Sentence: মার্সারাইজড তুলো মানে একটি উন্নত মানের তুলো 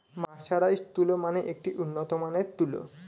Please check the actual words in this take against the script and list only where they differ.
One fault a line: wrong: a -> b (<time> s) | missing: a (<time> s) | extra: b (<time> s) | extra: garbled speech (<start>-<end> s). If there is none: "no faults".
no faults